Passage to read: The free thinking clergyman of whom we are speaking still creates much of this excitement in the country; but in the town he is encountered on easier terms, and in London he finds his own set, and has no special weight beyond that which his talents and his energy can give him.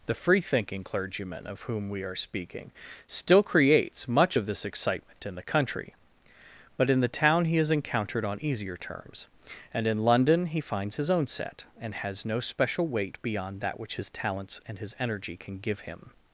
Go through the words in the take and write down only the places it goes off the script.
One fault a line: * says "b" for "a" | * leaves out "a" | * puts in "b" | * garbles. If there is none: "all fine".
all fine